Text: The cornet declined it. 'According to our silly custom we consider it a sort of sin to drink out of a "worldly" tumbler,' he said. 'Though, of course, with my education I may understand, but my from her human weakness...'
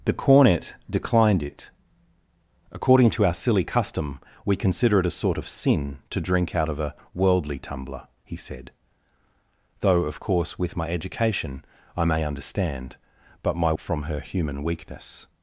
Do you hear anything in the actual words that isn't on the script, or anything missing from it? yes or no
no